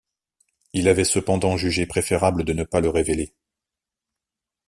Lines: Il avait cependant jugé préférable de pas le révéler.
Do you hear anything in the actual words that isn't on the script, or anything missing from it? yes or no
yes